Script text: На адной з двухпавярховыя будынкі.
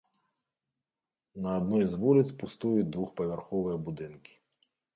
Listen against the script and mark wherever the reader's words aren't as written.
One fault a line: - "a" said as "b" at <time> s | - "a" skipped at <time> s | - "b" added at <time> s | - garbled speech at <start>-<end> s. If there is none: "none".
- "вуліц пустуюць" added at 2.0 s